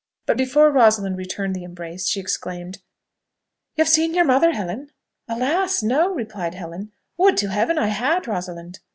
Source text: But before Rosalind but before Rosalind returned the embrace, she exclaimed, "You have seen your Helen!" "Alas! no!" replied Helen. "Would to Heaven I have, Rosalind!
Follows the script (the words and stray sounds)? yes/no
no